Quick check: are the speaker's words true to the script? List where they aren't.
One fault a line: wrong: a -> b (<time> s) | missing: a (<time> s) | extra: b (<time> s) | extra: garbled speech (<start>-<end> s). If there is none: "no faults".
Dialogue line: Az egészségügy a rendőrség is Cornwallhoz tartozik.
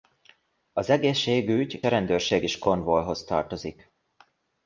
no faults